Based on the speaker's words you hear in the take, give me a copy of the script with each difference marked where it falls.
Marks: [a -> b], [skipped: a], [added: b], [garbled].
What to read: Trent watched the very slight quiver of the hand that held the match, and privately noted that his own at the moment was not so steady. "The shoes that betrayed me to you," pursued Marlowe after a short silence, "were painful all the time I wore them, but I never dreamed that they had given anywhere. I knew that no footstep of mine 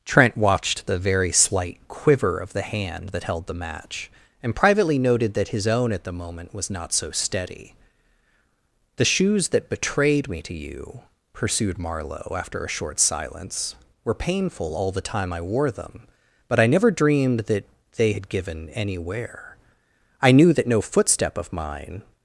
Trent watched the very slight quiver of the hand that held the match, and privately noted that his own at the moment was not so steady. "The shoes that betrayed me to you," pursued Marlowe after a short silence, "were painful all the time I wore them, but I never dreamed that they had given anywhere. I knew that no footstep of mine